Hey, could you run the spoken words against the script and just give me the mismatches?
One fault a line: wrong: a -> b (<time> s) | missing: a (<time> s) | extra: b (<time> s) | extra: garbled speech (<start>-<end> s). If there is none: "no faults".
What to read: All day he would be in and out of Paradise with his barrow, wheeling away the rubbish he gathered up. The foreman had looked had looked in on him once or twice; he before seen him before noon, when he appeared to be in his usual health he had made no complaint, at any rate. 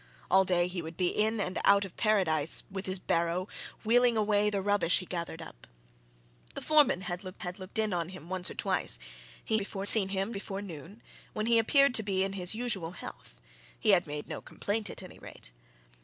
no faults